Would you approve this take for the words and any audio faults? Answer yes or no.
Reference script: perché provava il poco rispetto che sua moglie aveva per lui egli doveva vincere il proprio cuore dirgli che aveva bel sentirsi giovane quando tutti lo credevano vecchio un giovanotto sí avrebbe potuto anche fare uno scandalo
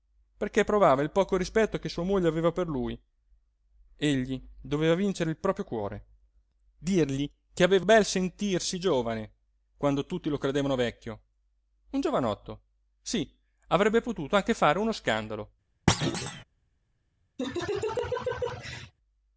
no